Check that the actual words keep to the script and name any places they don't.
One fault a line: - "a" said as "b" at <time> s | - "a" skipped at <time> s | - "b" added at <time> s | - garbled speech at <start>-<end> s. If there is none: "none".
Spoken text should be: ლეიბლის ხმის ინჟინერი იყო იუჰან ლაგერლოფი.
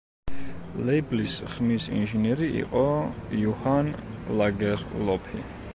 none